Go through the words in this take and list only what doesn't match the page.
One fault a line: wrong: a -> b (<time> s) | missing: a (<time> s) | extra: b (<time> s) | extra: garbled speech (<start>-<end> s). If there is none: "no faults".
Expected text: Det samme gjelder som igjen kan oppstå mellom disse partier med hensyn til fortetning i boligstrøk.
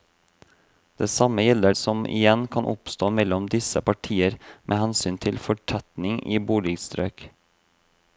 no faults